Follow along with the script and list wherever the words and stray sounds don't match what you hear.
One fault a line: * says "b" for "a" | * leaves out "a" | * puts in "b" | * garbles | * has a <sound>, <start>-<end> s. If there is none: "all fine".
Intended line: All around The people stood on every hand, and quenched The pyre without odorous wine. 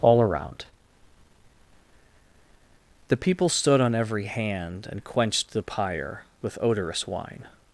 * says "with" for "without"